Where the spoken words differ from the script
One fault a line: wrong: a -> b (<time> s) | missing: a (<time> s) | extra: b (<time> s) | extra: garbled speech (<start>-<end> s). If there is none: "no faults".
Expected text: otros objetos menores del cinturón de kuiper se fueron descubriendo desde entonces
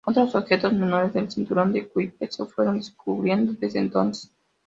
no faults